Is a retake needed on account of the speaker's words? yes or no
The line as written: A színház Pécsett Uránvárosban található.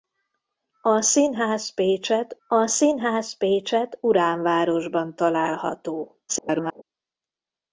yes